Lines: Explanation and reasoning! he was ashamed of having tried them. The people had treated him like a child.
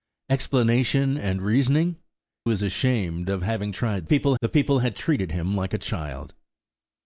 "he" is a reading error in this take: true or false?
true